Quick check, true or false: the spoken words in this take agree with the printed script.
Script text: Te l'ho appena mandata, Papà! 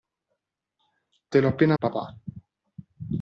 false